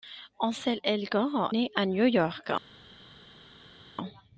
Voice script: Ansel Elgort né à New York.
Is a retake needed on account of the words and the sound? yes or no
no